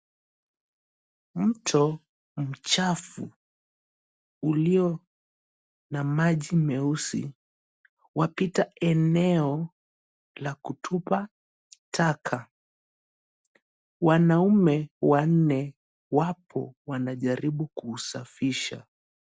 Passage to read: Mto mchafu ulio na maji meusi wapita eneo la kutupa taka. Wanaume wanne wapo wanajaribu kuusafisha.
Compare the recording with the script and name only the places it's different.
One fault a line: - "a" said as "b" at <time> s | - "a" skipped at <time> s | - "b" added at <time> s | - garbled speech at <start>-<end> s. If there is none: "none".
none